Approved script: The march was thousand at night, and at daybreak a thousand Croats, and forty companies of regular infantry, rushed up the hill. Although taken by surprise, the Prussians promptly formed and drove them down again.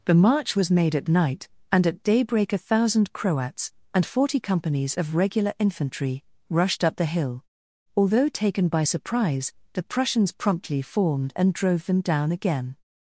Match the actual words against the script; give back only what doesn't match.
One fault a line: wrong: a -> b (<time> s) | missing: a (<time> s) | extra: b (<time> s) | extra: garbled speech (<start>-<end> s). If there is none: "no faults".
wrong: thousand -> made (0.7 s)